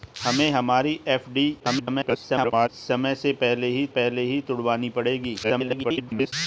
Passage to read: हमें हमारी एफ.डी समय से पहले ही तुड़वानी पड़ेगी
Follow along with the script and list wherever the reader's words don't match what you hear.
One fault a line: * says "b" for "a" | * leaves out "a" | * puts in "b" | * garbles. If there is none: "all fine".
* garbles
* puts in "पहले ही"
* garbles